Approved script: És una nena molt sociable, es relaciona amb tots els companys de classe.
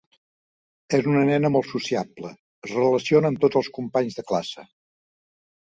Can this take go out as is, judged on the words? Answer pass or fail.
pass